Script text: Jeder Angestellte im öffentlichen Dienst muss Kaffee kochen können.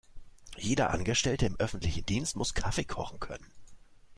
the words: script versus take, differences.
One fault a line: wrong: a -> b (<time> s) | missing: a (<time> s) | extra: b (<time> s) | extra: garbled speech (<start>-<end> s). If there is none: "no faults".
no faults